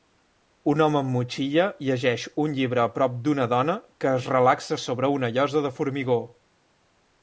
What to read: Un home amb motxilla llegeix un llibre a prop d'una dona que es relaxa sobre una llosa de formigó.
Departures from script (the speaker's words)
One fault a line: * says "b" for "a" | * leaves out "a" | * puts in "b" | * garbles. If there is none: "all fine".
all fine